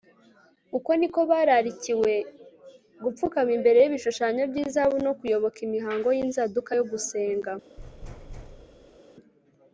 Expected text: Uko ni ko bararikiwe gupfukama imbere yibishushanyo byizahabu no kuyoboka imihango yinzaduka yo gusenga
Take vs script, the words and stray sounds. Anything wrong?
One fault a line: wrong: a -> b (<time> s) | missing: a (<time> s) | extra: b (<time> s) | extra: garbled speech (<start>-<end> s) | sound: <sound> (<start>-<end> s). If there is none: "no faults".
sound: thud (7.8-9.0 s)